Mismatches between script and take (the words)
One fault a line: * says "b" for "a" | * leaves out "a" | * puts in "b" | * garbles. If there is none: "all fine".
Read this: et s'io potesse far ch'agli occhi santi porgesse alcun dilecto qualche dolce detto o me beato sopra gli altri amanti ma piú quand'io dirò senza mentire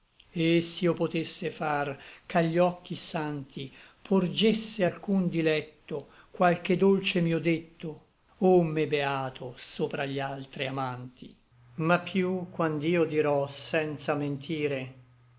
* puts in "mio"